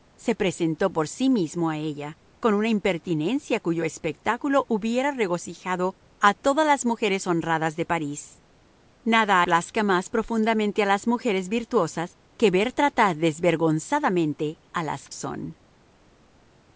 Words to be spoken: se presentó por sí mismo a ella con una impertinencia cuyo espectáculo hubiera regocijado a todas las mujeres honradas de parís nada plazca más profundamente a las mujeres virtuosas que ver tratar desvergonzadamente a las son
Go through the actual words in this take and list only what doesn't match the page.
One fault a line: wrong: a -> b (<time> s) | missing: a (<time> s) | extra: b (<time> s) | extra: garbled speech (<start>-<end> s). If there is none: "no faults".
no faults